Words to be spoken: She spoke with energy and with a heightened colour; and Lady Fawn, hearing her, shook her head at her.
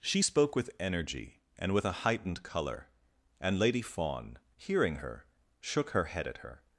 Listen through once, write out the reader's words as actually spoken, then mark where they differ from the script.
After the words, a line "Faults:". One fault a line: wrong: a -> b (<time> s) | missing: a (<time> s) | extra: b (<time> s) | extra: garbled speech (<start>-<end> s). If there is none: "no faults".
She spoke with energy and with a heightened colour; and Lady Fawn, hearing her, shook her head at her.
Faults:
no faults